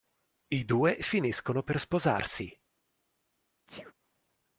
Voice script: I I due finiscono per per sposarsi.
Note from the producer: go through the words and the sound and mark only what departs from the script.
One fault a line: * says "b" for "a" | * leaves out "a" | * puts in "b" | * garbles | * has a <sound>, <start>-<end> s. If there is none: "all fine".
* leaves out "I"
* leaves out "per"
* has a sneeze, 3.7-3.9 s